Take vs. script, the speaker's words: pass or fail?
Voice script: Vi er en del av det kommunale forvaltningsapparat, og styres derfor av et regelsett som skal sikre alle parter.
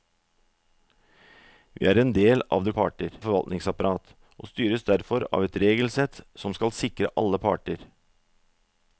fail